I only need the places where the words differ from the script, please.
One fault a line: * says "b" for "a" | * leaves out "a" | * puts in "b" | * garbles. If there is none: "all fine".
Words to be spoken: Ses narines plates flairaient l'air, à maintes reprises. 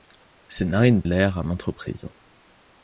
* leaves out "plates flairaient"